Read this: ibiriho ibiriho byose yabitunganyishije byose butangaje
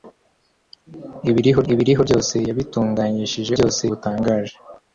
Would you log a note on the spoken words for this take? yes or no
no